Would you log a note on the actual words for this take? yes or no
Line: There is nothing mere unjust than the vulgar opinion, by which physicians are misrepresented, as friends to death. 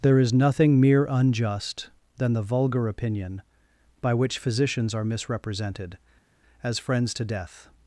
no